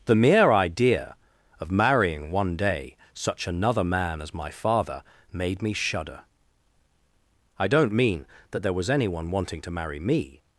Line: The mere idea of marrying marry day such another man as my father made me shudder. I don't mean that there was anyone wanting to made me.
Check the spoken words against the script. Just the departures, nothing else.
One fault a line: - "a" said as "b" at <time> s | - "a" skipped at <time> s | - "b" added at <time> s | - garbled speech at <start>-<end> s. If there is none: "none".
- "marry" said as "one" at 2.3 s
- "made" said as "marry" at 9.7 s